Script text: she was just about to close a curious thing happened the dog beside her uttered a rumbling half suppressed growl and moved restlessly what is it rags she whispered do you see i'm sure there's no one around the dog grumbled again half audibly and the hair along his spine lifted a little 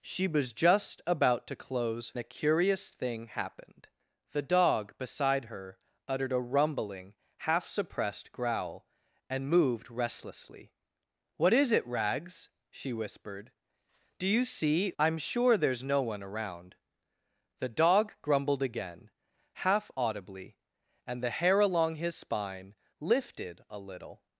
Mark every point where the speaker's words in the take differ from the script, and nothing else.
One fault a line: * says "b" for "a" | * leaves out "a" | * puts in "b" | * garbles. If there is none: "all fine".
all fine